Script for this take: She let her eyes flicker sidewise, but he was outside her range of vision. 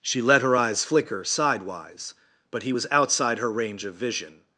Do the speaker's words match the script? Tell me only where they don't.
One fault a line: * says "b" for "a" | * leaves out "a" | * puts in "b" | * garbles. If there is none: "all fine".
all fine